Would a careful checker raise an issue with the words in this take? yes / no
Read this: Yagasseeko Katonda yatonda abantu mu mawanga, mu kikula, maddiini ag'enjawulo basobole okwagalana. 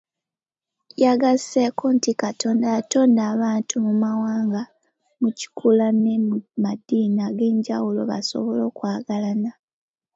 yes